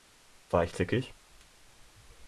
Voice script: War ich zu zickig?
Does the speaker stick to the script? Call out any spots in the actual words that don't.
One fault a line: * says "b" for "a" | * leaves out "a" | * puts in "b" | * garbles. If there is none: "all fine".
* leaves out "zu"